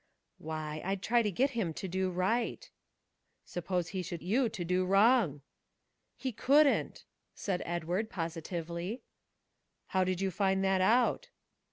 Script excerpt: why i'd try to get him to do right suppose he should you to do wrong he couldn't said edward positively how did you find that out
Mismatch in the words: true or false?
false